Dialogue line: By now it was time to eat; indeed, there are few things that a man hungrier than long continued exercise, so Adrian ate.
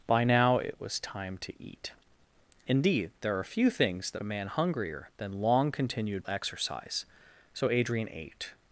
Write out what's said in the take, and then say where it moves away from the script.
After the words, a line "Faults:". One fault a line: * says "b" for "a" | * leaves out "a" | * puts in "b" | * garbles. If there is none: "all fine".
By now it was time to eat; indeed, there are few things that a man hungrier than long continued exercise, so Adrian ate.
Faults:
all fine